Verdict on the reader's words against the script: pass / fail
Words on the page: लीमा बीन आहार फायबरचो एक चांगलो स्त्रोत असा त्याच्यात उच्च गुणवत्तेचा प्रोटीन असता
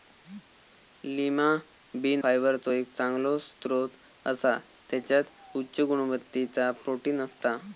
fail